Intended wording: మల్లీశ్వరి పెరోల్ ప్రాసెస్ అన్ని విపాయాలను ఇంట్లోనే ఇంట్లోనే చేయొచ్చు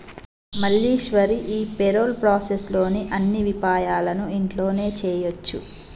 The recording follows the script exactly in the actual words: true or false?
false